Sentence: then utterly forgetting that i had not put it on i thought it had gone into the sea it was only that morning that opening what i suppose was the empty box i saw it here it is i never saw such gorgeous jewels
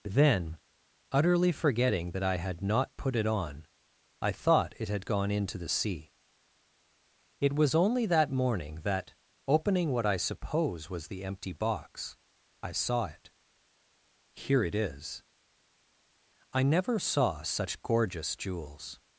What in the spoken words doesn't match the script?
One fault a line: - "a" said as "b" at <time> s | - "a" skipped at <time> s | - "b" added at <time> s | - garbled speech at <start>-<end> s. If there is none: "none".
none